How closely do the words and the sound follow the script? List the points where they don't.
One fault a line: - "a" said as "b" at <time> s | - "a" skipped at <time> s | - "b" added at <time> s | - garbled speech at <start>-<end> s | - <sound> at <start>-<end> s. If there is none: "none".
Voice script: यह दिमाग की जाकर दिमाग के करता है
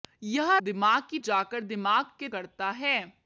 none